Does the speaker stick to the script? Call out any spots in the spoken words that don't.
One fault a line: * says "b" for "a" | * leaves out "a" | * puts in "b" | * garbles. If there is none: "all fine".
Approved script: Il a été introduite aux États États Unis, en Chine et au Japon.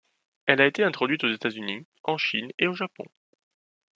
* says "Elle" for "Il"
* leaves out "États"